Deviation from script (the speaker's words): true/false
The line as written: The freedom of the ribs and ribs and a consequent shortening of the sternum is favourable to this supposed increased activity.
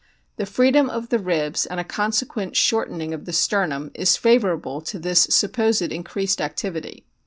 true